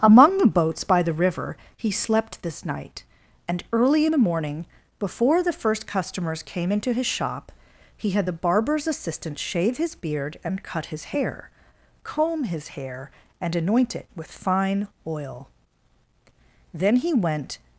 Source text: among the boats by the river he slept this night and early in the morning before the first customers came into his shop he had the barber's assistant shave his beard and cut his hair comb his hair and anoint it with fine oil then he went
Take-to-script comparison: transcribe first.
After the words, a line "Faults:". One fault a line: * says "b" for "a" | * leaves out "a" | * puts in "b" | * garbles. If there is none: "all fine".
among the boats by the river he slept this night and early in the morning before the first customers came into his shop he had the barber's assistant shave his beard and cut his hair comb his hair and anoint it with fine oil then he went
Faults:
all fine